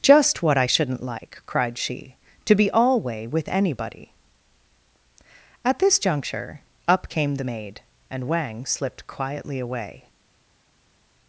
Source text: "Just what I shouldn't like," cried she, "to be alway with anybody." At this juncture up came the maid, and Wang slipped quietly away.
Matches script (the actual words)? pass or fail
pass